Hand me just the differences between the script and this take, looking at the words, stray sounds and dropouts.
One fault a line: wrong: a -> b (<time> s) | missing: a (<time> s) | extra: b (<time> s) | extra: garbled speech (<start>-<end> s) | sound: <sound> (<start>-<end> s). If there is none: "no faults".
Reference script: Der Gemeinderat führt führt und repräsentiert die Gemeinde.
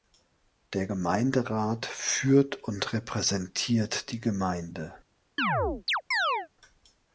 missing: führt (2.6 s)
sound: chirp (5.4-6.5 s)